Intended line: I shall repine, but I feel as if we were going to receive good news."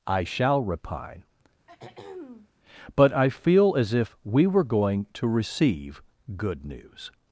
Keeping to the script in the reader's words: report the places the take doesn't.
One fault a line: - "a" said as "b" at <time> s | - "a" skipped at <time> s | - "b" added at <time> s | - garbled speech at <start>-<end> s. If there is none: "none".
none